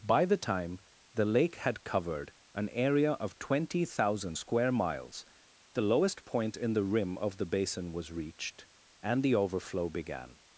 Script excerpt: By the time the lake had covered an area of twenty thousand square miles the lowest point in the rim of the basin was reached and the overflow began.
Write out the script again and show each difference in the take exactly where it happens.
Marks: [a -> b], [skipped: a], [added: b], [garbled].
By the time the lake had covered an area of twenty thousand square miles the lowest point in the rim of the basin was reached and the overflow began.